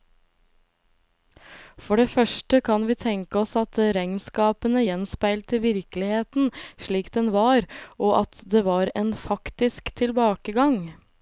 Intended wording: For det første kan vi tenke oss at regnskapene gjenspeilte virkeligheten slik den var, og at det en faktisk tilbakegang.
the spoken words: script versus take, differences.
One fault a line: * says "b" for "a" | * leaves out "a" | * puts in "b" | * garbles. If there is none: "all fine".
* puts in "var"